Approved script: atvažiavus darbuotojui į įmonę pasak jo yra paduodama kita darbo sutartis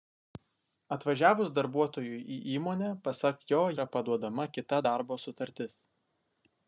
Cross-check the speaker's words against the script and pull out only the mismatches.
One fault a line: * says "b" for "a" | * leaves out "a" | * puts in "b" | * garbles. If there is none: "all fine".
all fine